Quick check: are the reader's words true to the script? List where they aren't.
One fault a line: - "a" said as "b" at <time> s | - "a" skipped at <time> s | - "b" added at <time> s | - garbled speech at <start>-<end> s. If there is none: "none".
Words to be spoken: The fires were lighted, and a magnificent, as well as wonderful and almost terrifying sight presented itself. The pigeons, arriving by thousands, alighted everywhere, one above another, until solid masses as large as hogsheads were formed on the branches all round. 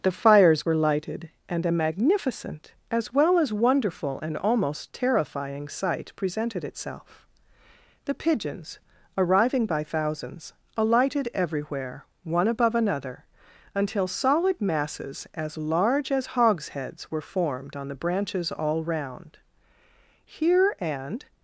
- "Here and" added at 20.2 s